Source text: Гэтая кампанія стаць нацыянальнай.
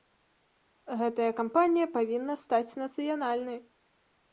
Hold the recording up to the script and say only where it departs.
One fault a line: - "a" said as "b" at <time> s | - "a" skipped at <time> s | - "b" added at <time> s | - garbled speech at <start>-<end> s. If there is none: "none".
- "павінна" added at 2.0 s